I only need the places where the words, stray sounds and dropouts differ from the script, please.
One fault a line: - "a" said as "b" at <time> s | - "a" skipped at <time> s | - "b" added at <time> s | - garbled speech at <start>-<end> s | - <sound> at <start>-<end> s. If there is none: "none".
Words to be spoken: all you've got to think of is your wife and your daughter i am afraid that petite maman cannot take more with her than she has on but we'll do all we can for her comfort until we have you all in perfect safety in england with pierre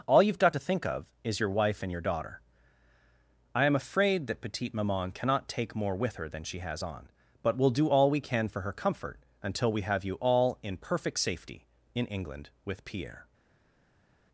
none